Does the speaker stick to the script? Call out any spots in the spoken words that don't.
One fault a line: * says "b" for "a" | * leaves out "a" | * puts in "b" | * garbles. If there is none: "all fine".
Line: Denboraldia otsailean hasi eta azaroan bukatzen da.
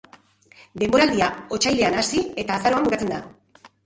all fine